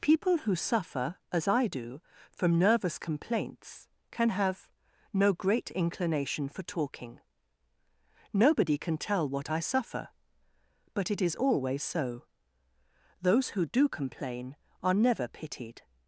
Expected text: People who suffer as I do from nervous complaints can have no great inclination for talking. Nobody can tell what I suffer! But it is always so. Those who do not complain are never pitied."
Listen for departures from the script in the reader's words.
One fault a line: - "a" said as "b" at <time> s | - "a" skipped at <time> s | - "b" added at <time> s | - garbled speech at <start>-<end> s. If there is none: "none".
- "not" skipped at 13.9 s